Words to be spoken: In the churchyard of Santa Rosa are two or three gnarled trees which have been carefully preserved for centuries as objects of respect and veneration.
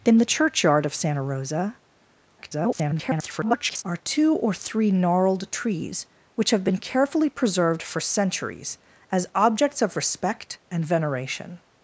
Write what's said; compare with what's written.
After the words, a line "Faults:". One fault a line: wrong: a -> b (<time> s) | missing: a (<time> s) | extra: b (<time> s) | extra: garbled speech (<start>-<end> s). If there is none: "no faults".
In the churchyard of Santa Rosa [garbled] are two or three gnarled trees which have been carefully preserved for centuries as objects of respect and veneration.
Faults:
extra: garbled speech (2.4-3.8 s)